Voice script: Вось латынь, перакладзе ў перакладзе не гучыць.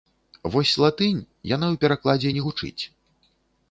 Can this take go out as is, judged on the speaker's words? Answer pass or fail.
fail